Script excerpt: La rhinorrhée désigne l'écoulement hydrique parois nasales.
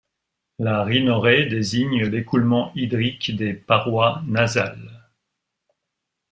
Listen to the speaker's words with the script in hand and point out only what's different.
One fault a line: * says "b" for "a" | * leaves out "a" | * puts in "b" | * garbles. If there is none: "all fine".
* puts in "des"